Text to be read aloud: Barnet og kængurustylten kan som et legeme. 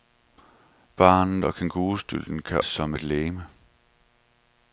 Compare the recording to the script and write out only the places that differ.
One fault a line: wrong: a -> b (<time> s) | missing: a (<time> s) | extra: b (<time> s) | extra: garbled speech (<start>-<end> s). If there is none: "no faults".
no faults